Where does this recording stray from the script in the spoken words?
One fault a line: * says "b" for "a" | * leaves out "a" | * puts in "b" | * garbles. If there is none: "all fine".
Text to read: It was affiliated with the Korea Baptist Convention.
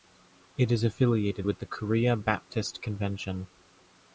* says "is" for "was"